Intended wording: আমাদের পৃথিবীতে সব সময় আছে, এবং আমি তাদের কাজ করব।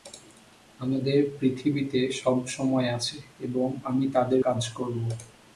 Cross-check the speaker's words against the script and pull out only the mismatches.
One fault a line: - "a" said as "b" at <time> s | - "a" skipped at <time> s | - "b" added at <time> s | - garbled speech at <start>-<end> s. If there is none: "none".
none